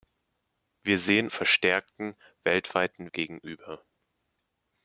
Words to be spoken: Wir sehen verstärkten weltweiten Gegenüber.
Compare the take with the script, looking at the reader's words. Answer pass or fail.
pass